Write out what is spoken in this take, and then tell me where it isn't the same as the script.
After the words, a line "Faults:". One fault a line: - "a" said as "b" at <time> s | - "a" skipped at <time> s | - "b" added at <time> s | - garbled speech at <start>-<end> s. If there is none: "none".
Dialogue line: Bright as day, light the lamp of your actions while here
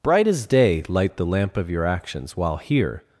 Bright as day, light the lamp of your actions while here
Faults:
none